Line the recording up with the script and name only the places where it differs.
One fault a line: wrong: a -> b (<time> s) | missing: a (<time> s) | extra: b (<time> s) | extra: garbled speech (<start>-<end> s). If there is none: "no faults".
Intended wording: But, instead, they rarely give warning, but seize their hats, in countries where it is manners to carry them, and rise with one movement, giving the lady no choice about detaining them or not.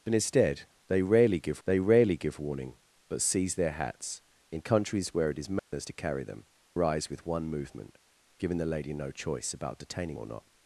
extra: they rarely give (1.6 s)
missing: and (6.4 s)
missing: them (10.2 s)